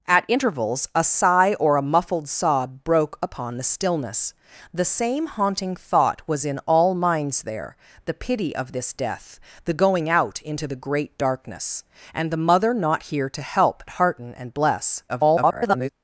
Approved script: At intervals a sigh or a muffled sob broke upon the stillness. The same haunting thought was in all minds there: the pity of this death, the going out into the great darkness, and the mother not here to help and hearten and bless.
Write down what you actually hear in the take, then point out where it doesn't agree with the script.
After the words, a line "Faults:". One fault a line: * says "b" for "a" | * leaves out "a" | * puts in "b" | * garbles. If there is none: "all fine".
At intervals a sigh or a muffled sob broke upon the stillness. The same haunting thought was in all minds there: the pity of this death, the going out into the great darkness, and the mother not here to help hearten and bless. [garbled]
Faults:
* leaves out "and"
* garbles